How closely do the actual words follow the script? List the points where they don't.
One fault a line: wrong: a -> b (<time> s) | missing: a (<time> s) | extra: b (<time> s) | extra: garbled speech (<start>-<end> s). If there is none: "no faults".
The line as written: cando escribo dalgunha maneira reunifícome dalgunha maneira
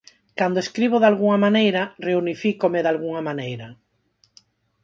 no faults